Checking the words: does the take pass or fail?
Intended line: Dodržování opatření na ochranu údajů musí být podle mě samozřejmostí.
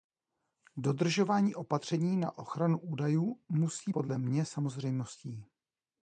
fail